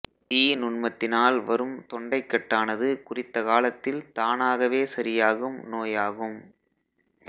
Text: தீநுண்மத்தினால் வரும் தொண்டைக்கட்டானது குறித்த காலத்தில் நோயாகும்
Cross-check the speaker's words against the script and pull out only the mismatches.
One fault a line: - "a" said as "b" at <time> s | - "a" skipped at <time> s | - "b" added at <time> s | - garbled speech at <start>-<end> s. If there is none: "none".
- "தானாகவே சரியாகும்" added at 4.1 s